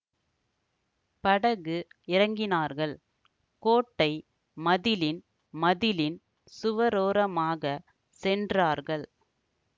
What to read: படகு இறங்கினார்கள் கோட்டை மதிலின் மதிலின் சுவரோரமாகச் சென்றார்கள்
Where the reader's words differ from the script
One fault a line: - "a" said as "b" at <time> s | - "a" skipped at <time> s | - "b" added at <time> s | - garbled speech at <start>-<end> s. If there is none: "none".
none